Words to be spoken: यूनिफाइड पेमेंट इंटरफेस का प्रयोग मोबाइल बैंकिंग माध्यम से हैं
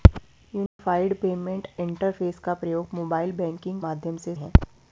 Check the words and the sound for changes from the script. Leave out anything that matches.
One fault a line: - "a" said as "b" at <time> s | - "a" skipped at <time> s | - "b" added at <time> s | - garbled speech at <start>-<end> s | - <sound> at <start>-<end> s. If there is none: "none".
- dropout at 0.7-0.8 s